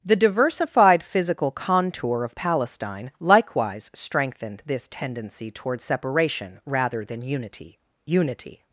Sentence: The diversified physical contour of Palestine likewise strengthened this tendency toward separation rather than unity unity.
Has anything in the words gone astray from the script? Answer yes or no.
no